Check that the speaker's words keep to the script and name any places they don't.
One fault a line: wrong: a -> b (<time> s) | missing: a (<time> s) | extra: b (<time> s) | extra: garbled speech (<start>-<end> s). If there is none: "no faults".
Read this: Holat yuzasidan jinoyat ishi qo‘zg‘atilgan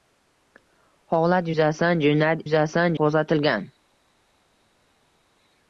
wrong: ishi -> yuzasidan (2.4 s)